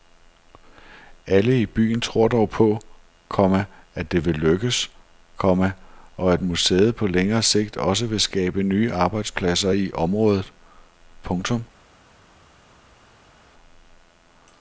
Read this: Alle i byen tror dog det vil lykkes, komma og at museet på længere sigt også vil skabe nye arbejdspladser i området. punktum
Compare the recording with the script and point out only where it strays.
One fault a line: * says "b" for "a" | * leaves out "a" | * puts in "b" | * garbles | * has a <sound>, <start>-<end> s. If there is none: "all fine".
* puts in "på komma at"